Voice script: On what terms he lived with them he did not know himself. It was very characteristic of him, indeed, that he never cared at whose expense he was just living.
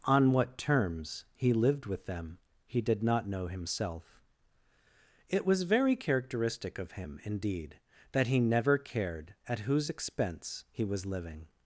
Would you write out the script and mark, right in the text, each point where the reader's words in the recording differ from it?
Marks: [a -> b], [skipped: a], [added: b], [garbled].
On what terms he lived with them he did not know himself. It was very characteristic of him, indeed, that he never cared at whose expense he was [skipped: just] living.